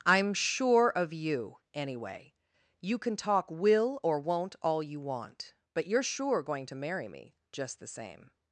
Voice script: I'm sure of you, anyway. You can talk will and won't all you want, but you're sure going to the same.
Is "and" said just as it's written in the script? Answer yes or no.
no